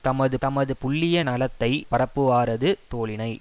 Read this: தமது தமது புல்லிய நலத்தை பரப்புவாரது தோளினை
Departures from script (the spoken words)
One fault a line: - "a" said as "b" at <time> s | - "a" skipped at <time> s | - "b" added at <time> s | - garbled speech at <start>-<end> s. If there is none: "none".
none